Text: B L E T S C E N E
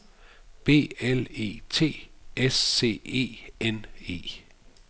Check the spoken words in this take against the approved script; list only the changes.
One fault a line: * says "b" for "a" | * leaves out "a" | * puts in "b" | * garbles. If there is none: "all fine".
all fine